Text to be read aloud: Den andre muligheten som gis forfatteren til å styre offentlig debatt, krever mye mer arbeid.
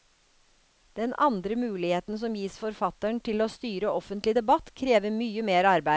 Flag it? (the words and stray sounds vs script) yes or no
no